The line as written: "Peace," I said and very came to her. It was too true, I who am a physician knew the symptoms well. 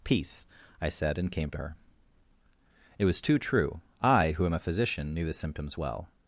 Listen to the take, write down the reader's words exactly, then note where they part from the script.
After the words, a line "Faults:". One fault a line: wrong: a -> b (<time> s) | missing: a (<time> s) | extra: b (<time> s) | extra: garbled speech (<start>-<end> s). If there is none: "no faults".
"Peace," I said and came to her. It was too true, I who am a physician knew the symptoms well.
Faults:
missing: very (1.3 s)